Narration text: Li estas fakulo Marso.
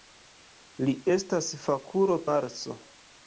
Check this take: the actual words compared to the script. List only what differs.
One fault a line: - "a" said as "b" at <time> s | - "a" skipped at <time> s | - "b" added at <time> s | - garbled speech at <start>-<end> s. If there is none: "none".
none